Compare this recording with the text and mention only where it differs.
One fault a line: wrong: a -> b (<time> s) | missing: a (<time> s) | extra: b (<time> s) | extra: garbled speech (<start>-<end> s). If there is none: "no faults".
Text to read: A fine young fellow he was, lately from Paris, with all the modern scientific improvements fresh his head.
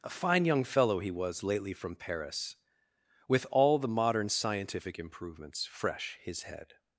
no faults